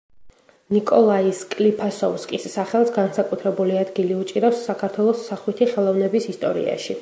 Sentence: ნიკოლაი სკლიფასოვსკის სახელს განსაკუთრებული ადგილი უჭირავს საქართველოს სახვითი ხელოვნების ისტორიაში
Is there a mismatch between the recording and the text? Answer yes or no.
no